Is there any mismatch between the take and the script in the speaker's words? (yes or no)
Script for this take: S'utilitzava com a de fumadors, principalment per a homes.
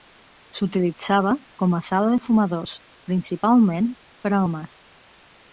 yes